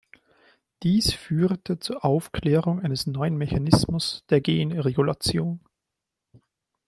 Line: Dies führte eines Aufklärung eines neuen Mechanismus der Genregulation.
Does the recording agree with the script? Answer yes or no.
no